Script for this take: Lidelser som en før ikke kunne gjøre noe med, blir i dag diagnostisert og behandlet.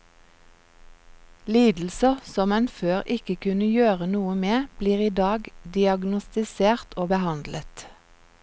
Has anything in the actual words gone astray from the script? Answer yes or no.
no